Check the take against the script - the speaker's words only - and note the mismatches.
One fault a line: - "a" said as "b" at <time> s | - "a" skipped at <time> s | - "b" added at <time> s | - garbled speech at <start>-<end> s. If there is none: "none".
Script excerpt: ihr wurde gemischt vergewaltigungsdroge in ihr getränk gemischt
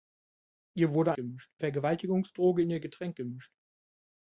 none